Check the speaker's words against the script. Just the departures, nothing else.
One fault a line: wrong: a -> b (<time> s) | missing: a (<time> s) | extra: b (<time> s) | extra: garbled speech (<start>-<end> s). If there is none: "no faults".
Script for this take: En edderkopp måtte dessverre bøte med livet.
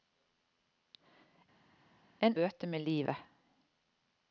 missing: edderkopp måtte dessverre (2.4 s)